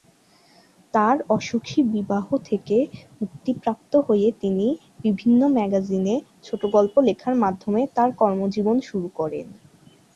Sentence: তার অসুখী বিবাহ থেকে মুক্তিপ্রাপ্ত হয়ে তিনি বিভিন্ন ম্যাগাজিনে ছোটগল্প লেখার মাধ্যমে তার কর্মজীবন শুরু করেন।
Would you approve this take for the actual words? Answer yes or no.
yes